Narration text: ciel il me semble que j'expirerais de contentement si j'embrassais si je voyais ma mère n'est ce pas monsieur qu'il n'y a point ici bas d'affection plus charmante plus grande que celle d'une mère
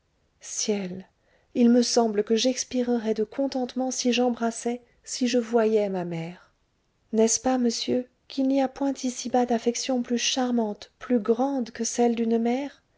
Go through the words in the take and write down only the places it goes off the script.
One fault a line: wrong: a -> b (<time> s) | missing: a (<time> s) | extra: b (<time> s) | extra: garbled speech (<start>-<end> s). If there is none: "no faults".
no faults